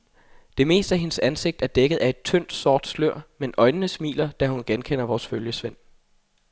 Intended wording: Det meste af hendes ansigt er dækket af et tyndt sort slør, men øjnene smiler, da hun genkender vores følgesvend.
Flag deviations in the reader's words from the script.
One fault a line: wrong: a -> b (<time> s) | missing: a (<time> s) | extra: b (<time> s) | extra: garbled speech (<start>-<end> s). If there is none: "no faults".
no faults